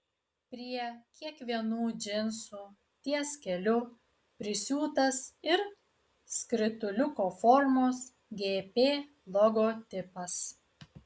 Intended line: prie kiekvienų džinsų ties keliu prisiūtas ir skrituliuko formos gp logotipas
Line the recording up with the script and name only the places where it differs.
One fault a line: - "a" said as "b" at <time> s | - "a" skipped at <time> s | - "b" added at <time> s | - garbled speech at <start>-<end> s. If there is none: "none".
none